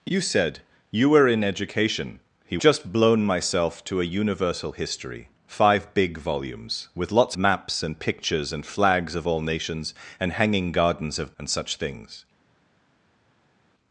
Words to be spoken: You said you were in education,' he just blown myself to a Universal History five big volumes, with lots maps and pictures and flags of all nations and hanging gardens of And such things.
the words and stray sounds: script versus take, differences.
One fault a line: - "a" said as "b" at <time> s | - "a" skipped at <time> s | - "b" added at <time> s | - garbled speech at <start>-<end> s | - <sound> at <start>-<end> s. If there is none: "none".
none